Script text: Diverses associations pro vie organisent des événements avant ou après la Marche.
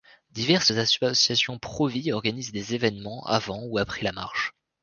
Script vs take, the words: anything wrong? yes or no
no